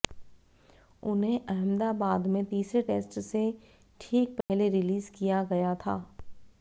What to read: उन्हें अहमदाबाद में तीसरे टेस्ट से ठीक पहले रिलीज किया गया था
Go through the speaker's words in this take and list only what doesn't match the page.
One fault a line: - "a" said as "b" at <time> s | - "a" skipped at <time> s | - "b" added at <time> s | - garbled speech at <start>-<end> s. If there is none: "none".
none